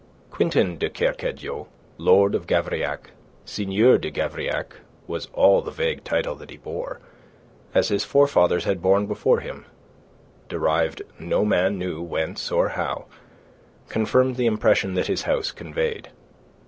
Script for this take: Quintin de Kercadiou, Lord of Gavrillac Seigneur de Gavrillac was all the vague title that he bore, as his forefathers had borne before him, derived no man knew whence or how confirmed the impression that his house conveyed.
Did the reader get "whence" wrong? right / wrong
right